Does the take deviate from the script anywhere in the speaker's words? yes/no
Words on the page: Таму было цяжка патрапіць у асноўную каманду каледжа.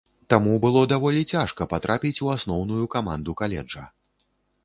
yes